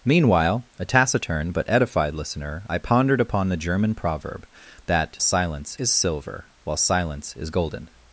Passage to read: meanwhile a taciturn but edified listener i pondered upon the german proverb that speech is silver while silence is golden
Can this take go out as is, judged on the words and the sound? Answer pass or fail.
fail